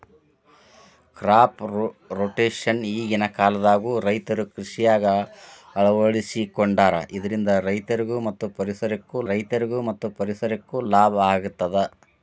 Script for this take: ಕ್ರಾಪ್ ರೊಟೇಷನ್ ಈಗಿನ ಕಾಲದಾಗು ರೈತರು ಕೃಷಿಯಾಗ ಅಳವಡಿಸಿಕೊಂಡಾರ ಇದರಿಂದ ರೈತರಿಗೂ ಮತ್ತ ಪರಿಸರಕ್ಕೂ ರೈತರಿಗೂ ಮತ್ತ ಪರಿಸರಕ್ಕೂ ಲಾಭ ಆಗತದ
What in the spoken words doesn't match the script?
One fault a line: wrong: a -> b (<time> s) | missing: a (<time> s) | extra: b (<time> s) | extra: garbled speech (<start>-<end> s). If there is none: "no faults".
no faults